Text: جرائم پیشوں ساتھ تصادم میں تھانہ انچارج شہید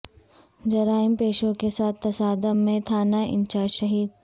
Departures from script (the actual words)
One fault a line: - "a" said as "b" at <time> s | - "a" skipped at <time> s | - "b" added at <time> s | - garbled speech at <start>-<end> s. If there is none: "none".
- "کے" added at 1.5 s